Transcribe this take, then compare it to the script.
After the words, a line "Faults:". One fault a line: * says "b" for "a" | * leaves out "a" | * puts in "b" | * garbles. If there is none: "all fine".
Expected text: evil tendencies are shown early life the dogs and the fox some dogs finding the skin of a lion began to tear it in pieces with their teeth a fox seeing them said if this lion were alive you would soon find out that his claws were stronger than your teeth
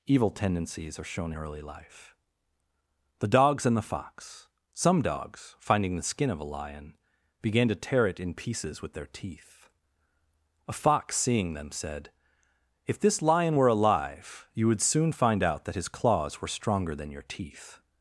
evil tendencies are shown early life the dogs and the fox some dogs finding the skin of a lion began to tear it in pieces with their teeth a fox seeing them said if this lion were alive you would soon find out that his claws were stronger than your teeth
Faults:
all fine